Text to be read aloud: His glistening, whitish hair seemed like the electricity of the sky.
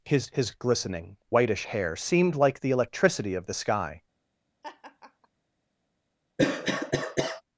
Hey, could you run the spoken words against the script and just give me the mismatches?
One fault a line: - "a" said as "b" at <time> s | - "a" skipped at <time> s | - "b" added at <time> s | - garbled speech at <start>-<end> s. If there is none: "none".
- "his" added at 0.3 s